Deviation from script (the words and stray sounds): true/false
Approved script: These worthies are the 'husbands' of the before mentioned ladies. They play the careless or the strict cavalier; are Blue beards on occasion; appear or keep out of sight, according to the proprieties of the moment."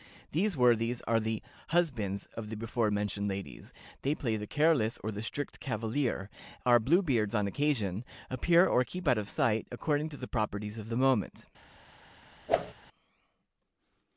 true